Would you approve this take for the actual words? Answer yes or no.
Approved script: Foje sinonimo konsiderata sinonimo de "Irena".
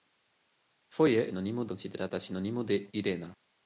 yes